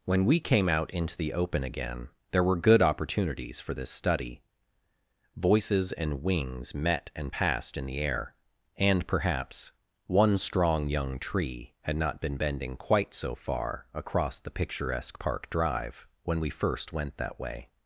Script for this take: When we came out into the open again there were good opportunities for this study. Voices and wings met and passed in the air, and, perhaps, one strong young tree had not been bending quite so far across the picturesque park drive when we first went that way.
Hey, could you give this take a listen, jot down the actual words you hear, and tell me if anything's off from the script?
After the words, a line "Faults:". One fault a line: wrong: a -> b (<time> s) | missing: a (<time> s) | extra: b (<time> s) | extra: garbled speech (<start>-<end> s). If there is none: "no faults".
When we came out into the open again there were good opportunities for this study. Voices and wings met and passed in the air, and, perhaps, one strong young tree had not been bending quite so far across the picturesque park drive when we first went that way.
Faults:
no faults